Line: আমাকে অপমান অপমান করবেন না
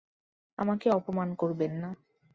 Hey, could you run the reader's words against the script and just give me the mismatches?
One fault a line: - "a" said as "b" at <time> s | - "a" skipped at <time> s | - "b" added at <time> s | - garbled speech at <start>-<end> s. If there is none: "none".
- "অপমান" skipped at 1.3 s